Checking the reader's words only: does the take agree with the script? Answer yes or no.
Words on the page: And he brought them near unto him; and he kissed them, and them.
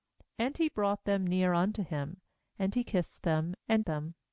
yes